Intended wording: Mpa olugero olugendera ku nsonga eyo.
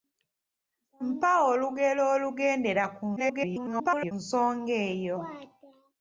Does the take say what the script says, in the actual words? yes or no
no